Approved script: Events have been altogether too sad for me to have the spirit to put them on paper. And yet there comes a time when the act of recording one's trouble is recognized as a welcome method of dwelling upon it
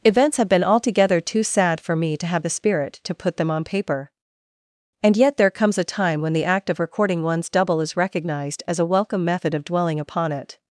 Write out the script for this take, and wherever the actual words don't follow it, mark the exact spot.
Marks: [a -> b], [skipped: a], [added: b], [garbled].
Events have been altogether too sad for me to have the spirit to put them on paper. And yet there comes a time when the act of recording one's [trouble -> double] is recognized as a welcome method of dwelling upon it